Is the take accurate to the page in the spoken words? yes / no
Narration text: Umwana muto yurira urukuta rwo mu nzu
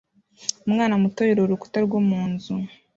yes